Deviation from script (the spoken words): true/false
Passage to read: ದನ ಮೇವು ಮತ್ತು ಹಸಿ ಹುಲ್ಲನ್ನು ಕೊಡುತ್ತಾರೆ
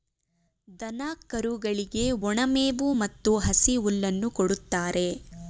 true